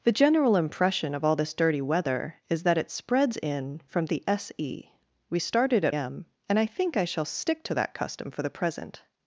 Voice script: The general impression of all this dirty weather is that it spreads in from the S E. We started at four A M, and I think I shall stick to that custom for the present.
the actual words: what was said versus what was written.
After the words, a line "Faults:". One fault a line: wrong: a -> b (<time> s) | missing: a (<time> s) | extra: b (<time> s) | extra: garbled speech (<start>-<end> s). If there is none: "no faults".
The general impression of all this dirty weather is that it spreads in from the S E. We started at M, and I think I shall stick to that custom for the present.
Faults:
missing: four A (6.0 s)